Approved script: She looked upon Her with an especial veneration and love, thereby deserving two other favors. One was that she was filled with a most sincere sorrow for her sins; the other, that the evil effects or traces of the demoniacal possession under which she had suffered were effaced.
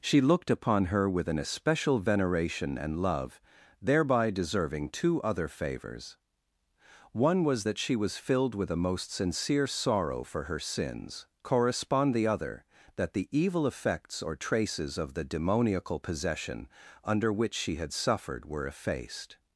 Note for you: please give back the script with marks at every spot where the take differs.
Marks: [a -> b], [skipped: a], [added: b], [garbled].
She looked upon Her with an especial veneration and love, thereby deserving two other favors. One was that she was filled with a most sincere sorrow for her sins; [added: correspond] the other, that the evil effects or traces of the demoniacal possession under which she had suffered were effaced.